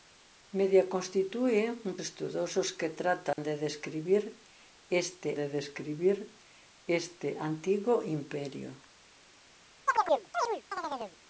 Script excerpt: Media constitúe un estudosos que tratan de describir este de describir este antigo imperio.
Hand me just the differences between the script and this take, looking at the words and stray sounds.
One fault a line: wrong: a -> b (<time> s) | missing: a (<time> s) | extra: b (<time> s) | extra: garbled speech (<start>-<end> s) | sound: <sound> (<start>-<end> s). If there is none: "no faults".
sound: dropout (3.3-3.4 s)
sound: chirp (9.9-11.2 s)